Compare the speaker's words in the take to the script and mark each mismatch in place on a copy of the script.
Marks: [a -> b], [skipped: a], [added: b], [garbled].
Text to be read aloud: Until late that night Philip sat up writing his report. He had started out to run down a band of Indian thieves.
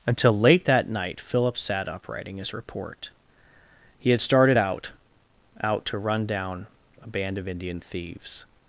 Until late that night Philip sat up writing his report. He had started out [added: out] to run down a band of Indian thieves.